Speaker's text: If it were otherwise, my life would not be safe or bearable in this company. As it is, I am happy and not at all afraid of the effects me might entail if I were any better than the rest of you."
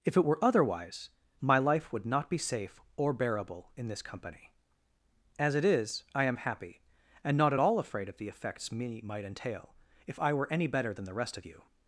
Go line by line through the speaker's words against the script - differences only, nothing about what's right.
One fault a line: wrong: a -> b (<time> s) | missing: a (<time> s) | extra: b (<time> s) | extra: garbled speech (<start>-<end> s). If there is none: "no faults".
no faults